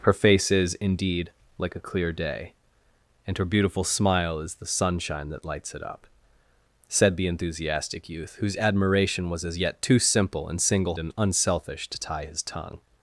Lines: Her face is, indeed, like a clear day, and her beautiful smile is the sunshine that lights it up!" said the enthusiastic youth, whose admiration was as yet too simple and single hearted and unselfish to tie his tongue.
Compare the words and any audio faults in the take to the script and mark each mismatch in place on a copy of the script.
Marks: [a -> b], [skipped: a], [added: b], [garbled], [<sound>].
Her face is, indeed, like a clear day, and her beautiful smile is the sunshine that lights it up!" said the enthusiastic youth, whose admiration was as yet too simple and single [skipped: hearted] and unselfish to tie his tongue.